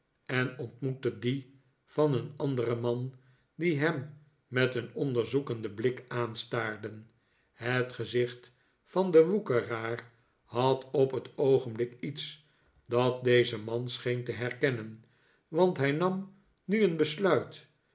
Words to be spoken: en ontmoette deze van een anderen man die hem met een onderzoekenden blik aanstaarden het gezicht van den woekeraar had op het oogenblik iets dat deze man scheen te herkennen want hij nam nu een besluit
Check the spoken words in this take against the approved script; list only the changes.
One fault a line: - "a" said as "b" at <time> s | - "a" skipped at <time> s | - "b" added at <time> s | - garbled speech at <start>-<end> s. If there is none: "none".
- "deze" said as "die" at 1.2 s